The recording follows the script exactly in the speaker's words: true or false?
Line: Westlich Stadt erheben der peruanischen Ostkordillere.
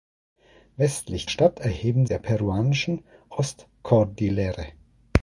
true